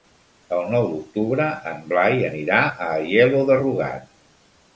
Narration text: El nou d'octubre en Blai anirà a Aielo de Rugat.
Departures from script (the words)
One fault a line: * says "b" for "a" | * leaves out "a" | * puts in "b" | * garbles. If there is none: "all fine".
all fine